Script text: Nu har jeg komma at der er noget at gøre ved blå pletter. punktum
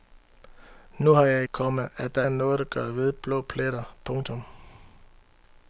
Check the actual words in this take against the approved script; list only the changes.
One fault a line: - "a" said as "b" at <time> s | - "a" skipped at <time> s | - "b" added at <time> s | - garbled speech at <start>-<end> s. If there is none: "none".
none